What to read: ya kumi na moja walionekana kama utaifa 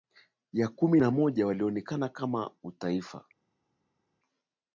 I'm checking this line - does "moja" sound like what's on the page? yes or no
yes